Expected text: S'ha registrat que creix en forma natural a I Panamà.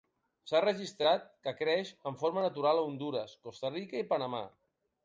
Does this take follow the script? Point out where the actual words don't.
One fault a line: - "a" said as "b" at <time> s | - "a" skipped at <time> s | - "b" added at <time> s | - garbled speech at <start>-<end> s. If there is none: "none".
- "Hondures Costa Rica" added at 2.9 s